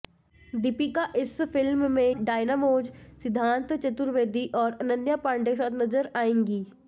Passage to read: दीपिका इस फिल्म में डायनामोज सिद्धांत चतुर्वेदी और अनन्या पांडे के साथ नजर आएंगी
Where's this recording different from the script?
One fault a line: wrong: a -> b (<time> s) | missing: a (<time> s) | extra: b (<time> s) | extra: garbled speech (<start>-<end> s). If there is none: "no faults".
no faults